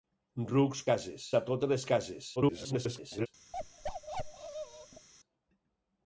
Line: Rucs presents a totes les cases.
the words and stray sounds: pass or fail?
fail